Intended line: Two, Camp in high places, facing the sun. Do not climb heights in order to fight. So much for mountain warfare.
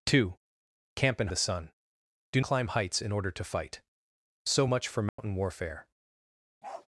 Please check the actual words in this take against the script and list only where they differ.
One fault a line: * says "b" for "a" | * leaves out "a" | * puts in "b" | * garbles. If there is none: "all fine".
* leaves out "high places facing"
* leaves out "not"